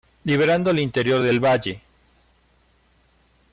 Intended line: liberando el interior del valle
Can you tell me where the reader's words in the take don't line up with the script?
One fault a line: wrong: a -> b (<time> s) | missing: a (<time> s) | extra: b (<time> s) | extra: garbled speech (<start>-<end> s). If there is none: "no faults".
no faults